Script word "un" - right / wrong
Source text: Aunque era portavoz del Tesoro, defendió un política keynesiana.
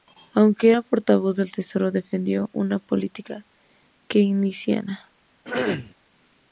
wrong